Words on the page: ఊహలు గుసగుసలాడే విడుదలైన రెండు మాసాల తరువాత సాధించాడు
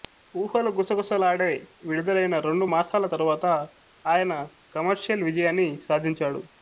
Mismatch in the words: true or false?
true